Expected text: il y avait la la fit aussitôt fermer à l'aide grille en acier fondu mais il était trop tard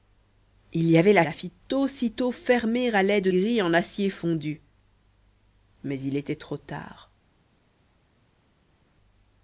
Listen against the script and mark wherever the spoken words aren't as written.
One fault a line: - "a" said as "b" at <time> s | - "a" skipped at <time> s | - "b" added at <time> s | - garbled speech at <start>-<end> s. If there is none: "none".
none